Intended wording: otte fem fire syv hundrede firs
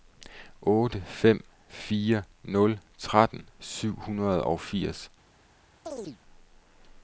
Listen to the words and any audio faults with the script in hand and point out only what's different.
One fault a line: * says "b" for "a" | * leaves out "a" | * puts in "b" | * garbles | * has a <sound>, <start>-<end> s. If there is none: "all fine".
* puts in "nul tretten"
* puts in "og"
* has a chirp, 5.9-6.2 s